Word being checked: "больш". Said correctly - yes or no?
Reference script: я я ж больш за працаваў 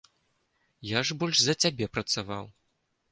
yes